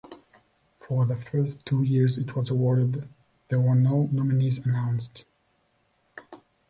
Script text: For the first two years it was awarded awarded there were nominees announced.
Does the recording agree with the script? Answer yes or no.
no